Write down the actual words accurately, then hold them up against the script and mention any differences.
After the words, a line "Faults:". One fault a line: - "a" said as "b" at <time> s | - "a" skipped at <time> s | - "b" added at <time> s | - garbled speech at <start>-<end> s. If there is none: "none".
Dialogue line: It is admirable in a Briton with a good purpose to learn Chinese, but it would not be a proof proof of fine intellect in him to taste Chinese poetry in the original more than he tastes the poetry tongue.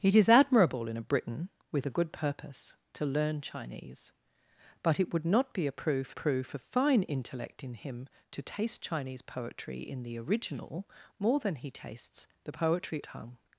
It is admirable in a Briton with a good purpose to learn Chinese, but it would not be a proof proof of fine intellect in him to taste Chinese poetry in the original more than he tastes the poetry tongue.
Faults:
none